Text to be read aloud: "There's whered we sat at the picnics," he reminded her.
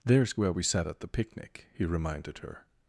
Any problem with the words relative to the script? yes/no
yes